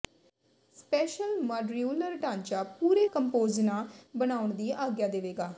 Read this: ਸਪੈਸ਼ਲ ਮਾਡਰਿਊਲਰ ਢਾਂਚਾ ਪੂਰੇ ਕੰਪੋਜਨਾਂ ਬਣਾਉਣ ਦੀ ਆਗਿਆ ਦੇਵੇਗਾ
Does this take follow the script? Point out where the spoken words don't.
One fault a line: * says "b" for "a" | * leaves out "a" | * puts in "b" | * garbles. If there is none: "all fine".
all fine